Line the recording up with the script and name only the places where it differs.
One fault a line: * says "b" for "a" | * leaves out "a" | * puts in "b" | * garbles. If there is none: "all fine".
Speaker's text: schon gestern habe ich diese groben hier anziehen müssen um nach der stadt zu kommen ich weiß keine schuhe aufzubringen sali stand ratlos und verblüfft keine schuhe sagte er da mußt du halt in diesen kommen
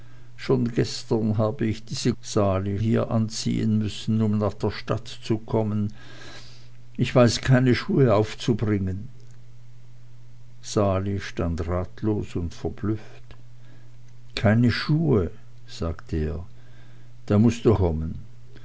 * says "sali" for "groben"
* leaves out "halt in diesen"